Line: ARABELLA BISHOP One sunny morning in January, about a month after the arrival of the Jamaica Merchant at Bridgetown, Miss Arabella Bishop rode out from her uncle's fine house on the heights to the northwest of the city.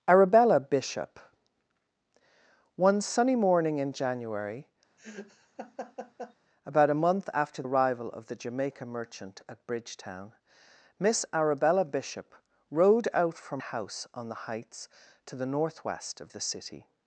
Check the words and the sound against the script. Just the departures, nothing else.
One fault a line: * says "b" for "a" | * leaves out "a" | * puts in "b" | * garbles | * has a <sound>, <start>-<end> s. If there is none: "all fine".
* has a laugh, 5.0-6.4 s
* leaves out "the"
* leaves out "her uncle's fine"